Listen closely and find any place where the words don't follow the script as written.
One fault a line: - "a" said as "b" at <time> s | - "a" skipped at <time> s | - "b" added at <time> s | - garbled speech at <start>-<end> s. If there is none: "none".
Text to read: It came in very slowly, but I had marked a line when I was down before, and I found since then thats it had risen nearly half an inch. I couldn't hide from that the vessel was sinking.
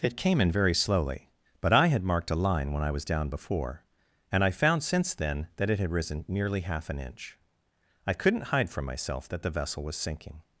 - "thats" said as "that" at 5.6 s
- "myself" added at 8.8 s